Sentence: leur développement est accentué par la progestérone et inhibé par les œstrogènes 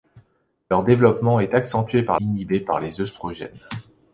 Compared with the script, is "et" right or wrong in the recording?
wrong